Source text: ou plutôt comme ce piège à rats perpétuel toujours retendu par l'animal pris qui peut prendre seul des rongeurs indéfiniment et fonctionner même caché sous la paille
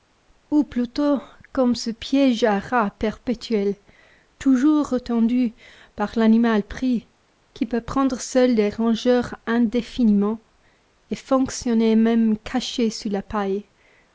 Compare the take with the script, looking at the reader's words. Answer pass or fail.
pass